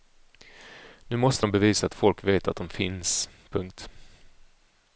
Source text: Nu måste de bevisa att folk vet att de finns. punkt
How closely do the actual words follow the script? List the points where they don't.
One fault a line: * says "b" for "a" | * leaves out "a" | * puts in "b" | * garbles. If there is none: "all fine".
all fine